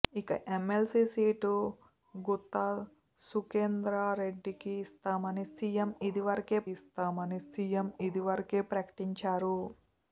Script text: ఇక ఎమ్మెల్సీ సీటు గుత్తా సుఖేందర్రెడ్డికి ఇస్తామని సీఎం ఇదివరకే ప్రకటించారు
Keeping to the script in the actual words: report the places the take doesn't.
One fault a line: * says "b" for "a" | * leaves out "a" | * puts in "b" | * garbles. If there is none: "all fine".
* puts in "ఇస్తామని సీఎం ఇదివరకే"